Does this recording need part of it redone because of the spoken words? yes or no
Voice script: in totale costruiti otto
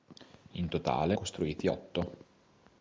no